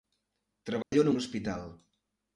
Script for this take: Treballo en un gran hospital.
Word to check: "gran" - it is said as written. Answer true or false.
false